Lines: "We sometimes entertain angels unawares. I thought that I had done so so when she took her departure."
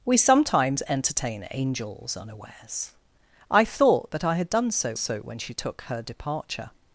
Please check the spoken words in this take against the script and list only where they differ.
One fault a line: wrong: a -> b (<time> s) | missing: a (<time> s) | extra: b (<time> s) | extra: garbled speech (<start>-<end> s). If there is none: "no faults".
no faults